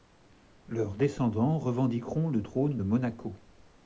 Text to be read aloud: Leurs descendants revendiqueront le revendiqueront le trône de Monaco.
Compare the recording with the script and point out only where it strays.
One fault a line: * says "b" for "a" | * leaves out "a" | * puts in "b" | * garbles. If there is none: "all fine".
* leaves out "revendiqueront le"